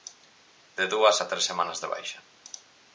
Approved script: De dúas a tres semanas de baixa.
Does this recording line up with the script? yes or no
yes